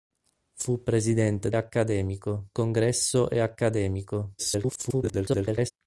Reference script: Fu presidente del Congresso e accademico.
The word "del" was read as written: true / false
false